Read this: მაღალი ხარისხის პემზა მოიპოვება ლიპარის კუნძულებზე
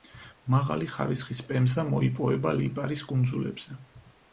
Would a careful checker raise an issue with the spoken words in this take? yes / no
no